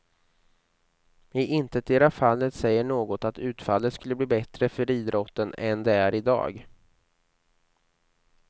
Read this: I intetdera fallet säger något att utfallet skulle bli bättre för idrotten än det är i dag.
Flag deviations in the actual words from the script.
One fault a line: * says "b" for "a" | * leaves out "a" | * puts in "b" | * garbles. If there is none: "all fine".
all fine